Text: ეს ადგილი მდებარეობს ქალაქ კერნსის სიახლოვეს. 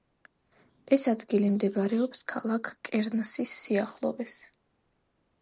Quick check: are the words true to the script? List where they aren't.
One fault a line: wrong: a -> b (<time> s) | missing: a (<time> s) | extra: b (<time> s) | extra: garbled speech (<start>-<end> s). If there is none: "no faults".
no faults